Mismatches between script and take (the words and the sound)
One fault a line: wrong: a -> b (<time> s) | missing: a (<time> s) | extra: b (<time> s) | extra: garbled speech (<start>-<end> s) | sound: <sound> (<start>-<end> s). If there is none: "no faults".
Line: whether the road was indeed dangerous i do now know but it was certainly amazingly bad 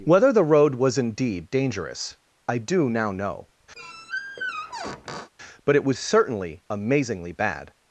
sound: squeak (3.8-5.3 s)